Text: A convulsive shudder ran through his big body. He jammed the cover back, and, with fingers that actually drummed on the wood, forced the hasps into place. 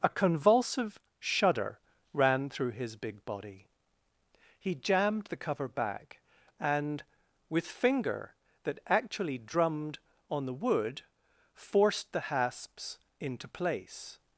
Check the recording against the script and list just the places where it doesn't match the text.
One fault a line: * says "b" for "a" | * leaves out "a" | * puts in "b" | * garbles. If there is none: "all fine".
* says "finger" for "fingers"